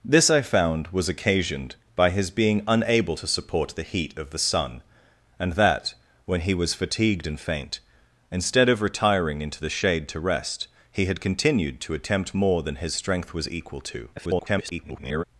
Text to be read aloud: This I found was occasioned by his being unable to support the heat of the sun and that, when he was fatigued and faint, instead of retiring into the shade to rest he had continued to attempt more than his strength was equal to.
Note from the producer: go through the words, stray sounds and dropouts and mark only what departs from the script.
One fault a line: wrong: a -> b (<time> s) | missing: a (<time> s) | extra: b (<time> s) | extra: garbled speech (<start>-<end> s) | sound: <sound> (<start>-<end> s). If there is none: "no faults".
extra: garbled speech (14.2-15.2 s)